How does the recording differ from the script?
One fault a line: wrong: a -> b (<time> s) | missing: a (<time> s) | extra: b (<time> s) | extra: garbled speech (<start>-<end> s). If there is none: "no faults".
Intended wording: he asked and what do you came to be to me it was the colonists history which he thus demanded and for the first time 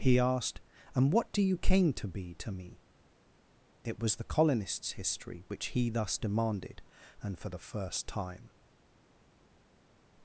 no faults